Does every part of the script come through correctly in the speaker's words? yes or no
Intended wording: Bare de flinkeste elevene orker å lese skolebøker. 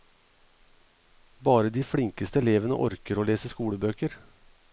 yes